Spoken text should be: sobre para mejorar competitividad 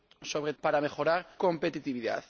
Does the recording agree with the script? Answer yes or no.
yes